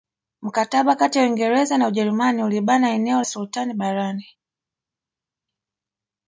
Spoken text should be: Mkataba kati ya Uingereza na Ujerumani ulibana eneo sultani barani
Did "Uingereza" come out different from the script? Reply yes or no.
no